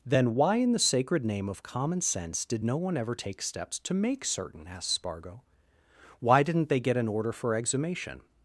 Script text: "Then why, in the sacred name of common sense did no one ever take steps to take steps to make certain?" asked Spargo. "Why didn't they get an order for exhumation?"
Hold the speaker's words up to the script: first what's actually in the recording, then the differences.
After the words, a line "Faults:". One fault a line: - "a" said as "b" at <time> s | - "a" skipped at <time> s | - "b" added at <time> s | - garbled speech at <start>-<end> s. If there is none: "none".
"Then why, in the sacred name of common sense did no one ever take steps to make certain?" asked Spargo. "Why didn't they get an order for exhumation?"
Faults:
- "take steps to" skipped at 3.9 s